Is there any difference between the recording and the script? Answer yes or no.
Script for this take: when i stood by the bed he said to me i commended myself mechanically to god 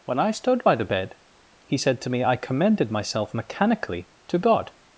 no